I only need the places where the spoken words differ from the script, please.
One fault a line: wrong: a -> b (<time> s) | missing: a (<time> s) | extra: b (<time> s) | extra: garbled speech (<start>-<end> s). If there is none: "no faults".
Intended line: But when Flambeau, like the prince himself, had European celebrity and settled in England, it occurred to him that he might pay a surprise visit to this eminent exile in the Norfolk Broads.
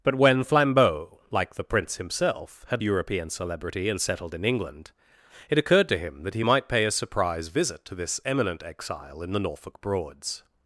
no faults